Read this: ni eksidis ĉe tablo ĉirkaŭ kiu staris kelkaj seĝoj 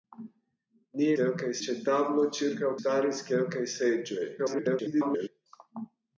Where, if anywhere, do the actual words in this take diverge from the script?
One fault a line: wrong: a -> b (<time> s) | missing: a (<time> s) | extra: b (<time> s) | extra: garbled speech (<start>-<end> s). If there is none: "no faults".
wrong: eksidis -> kelkaj (1.2 s)
missing: kiu (2.7 s)
extra: garbled speech (4.4-5.3 s)